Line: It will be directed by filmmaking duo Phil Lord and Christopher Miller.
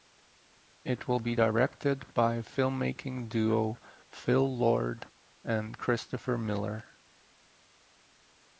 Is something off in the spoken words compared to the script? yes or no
no